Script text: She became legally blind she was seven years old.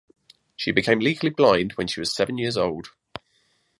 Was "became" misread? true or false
false